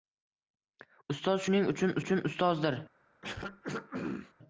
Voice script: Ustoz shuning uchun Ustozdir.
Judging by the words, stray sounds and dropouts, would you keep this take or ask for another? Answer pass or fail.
fail